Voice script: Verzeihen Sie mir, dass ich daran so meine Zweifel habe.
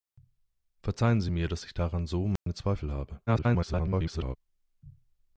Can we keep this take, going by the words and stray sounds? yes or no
no